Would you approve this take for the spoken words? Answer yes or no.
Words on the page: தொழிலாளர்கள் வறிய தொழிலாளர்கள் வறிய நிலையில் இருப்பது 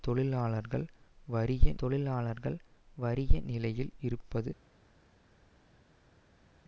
yes